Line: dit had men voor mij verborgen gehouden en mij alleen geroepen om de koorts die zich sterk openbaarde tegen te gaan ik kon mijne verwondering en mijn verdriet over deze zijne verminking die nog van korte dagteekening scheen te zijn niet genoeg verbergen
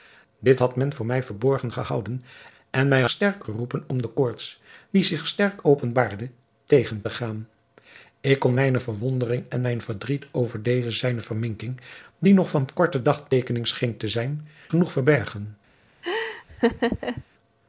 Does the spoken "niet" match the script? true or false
false